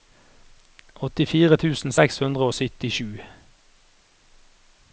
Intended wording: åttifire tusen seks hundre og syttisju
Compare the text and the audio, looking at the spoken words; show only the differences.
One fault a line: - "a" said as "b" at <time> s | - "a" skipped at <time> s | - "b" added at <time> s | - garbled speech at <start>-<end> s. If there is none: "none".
none